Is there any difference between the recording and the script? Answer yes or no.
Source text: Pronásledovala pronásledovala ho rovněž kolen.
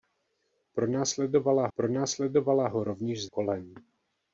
no